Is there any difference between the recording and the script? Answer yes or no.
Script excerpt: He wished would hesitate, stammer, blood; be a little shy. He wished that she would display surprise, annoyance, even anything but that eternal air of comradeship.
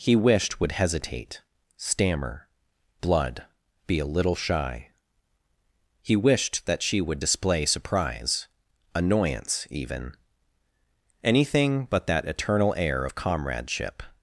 no